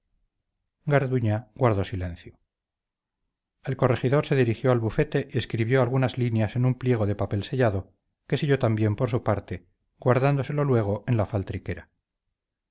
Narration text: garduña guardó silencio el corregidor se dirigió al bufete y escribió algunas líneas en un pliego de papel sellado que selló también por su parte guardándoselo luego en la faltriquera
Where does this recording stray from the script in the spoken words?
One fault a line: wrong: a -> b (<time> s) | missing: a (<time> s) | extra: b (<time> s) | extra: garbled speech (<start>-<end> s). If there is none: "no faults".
no faults